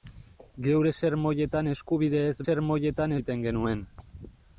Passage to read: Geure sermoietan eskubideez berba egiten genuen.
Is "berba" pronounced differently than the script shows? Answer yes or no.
yes